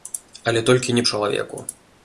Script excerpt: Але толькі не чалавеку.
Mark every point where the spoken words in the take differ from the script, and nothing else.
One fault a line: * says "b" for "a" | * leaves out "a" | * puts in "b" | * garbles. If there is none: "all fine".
all fine